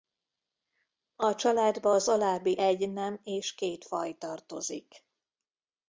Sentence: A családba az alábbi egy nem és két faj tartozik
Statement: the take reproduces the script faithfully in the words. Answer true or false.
true